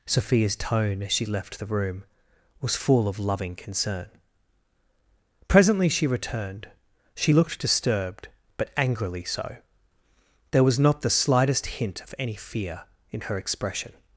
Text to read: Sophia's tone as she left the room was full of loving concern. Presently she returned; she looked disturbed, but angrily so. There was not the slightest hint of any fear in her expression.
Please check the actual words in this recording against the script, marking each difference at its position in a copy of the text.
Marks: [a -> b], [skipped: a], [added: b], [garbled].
Sophia's tone as she left the room was full of loving concern. Presently she returned; she looked disturbed, but angrily so. There was not the slightest hint of any fear in her expression.